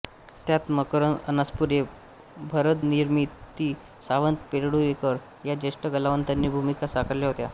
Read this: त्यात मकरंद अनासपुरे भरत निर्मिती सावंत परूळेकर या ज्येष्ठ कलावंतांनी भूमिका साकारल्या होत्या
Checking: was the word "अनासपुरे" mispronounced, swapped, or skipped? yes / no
no